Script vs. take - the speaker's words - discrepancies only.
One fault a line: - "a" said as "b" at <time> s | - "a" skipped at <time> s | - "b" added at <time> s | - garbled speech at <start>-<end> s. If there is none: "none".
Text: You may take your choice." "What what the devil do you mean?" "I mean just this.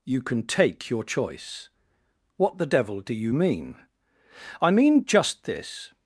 - "may" said as "can" at 0.2 s
- "what" skipped at 2.6 s